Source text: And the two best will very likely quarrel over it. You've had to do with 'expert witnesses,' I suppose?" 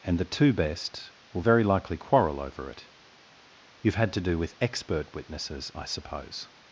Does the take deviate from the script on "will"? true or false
false